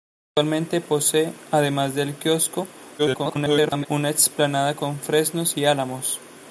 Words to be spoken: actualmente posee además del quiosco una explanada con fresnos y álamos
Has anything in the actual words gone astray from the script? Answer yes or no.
yes